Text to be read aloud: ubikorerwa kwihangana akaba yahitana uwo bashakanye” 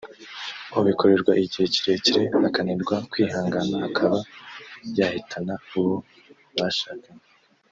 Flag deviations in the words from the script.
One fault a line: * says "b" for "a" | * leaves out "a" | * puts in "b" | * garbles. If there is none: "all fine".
* puts in "igihe kirekire akananirwa"